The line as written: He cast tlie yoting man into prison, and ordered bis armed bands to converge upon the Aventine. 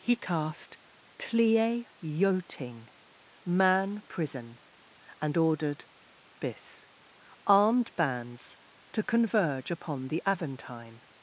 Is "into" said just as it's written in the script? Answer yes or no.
no